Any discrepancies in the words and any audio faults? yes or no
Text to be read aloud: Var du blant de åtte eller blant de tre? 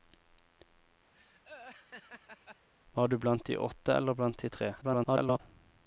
yes